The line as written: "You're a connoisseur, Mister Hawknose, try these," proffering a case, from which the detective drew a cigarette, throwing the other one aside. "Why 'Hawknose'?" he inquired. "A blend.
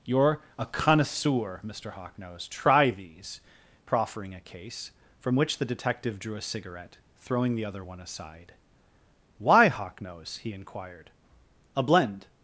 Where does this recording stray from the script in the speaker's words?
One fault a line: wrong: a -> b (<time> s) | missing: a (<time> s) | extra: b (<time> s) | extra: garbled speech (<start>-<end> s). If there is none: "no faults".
no faults